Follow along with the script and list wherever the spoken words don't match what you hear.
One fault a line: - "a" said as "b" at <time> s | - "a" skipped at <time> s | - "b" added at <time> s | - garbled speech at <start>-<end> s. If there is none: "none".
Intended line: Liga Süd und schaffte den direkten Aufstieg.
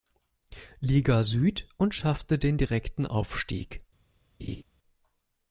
none